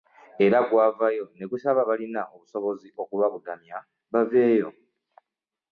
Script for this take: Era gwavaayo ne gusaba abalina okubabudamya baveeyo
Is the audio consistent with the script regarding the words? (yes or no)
no